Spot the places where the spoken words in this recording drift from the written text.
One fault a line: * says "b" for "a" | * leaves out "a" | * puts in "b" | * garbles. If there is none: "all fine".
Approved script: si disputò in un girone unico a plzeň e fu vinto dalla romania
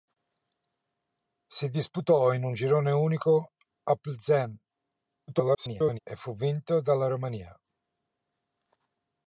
* garbles